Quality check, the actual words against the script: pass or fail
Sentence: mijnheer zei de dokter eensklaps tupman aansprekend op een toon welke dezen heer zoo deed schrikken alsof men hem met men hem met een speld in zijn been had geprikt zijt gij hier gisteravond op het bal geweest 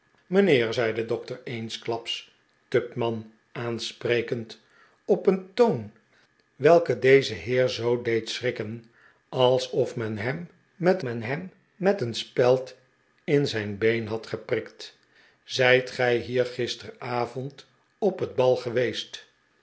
pass